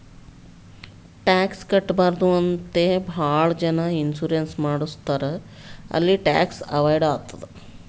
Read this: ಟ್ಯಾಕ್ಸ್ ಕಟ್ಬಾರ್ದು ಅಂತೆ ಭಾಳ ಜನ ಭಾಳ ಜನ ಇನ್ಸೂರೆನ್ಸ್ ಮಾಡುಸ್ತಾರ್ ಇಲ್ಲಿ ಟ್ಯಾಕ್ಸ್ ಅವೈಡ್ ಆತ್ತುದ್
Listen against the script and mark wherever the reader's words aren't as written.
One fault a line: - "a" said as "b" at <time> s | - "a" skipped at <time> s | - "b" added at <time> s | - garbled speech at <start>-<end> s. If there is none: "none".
- "ಭಾಳ ಜನ" skipped at 3.9 s
- "ಇಲ್ಲಿ" said as "ಅಲ್ಲಿ" at 5.9 s